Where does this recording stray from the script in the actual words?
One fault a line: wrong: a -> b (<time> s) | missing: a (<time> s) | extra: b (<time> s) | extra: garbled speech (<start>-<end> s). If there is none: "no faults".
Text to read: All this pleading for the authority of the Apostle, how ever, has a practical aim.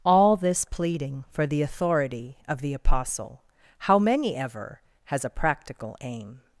extra: many (4.0 s)